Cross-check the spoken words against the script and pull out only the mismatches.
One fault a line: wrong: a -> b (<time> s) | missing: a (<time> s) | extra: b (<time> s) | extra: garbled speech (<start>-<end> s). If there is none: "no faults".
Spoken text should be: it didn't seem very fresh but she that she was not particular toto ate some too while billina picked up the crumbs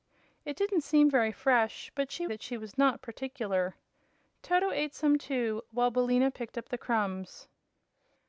no faults